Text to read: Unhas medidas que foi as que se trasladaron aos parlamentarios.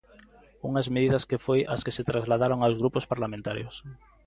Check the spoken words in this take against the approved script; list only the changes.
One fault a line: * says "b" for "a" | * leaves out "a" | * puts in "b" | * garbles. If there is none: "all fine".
* puts in "grupos"